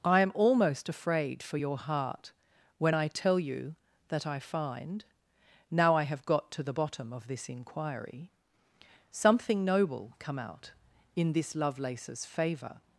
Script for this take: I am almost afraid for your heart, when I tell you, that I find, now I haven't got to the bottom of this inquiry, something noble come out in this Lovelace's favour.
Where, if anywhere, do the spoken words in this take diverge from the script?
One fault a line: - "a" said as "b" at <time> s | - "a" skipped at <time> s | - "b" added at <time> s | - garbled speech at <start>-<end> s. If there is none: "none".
- "haven't" said as "have" at 6.0 s